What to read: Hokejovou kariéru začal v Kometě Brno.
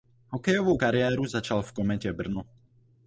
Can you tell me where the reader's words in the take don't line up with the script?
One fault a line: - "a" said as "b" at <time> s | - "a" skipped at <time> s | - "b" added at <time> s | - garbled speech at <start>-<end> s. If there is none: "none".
none